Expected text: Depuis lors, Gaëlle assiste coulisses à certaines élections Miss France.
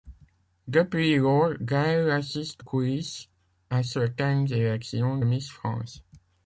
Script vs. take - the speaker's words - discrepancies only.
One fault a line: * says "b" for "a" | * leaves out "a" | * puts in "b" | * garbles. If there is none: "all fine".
all fine